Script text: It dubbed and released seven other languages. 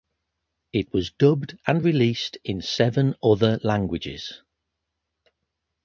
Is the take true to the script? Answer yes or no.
no